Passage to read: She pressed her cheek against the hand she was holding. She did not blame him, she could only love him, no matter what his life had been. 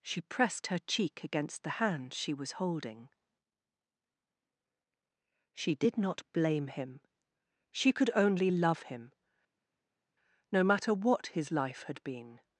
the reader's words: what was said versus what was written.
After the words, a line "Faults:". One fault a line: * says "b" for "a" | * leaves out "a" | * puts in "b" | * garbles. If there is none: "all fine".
She pressed her cheek against the hand she was holding. She did not blame him, she could only love him, no matter what his life had been.
Faults:
all fine